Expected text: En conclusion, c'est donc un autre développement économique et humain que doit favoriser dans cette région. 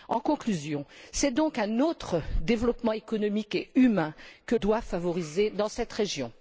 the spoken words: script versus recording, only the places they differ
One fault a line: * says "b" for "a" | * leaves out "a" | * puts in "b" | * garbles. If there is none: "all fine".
all fine